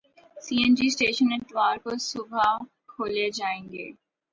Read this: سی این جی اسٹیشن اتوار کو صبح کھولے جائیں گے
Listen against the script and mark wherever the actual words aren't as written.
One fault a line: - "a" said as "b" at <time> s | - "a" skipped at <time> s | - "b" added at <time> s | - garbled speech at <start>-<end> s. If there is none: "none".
none